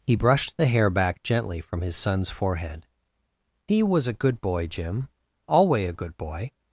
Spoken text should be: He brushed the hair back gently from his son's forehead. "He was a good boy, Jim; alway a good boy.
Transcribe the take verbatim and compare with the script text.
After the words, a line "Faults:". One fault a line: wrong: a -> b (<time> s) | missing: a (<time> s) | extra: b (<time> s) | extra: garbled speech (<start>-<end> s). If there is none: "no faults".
He brushed the hair back gently from his son's forehead. "He was a good boy, Jim; alway a good boy.
Faults:
no faults